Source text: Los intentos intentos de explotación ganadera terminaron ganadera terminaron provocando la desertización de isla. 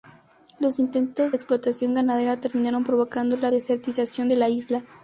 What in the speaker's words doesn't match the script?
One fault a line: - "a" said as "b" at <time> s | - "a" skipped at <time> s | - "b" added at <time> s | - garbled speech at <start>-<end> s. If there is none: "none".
- "intentos" skipped at 1.3 s
- "ganadera terminaron" skipped at 2.8 s
- "la" added at 4.3 s